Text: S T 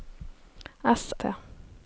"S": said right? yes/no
yes